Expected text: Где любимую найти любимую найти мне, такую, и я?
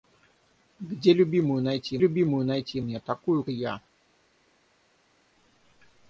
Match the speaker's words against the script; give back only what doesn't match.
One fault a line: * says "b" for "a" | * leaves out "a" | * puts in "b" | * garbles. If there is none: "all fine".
all fine